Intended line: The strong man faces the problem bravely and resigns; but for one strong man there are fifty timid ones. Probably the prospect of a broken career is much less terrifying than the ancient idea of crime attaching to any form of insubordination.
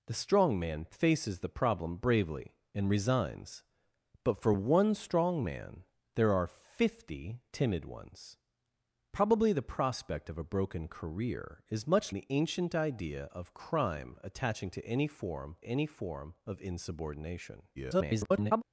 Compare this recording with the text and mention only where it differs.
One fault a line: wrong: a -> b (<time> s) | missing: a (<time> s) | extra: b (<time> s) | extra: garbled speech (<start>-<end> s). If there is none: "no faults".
missing: less terrifying than (12.1 s)
extra: any form (15.6 s)
extra: garbled speech (17.8-18.6 s)